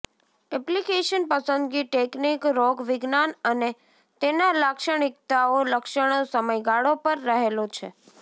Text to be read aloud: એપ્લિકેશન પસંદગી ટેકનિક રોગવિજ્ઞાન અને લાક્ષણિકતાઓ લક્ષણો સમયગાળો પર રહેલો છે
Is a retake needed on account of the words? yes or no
yes